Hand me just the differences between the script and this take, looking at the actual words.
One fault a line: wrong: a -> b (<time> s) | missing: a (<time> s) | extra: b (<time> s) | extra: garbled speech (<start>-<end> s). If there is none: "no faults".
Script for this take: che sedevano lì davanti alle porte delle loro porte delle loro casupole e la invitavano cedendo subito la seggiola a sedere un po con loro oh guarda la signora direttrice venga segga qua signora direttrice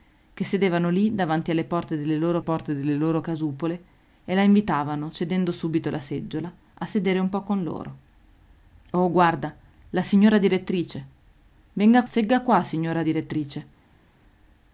no faults